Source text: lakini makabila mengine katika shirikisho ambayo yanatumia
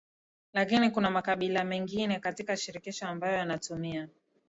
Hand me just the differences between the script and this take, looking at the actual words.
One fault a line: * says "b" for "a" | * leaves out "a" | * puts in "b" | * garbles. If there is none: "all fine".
* puts in "kuna"